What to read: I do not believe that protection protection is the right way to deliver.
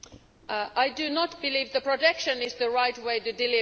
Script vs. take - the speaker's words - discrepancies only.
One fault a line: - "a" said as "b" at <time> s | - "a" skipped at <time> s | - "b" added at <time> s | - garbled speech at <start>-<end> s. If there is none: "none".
- "protection" skipped at 2.4 s